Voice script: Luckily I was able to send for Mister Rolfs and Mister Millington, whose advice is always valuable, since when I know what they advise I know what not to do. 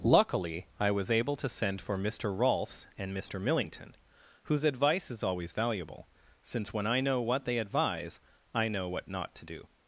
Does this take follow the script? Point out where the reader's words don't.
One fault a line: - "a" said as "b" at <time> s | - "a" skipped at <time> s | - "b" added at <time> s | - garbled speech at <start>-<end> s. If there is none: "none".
none